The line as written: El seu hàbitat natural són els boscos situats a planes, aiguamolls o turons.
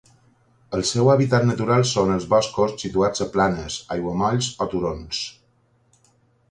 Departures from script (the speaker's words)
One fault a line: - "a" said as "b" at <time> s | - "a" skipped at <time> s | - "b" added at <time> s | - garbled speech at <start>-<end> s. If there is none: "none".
none